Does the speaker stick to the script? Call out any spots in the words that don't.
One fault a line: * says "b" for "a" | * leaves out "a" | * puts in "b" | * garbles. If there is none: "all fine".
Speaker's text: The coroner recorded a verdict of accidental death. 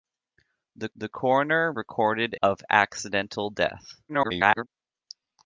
* puts in "the"
* leaves out "a verdict"
* garbles